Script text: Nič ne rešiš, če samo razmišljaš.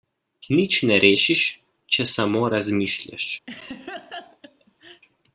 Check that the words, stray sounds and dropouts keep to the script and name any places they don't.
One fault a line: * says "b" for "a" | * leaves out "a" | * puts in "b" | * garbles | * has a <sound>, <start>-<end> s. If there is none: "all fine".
* has a laugh, 3.5-5.0 s